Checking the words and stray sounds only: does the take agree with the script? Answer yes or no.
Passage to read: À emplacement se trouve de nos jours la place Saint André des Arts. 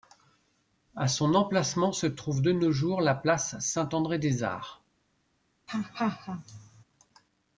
no